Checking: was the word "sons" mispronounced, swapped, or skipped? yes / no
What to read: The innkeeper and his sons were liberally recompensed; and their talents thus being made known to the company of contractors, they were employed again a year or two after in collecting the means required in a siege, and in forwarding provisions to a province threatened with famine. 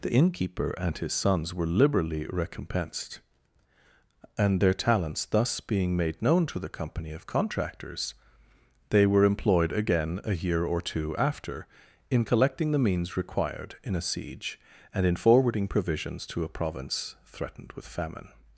no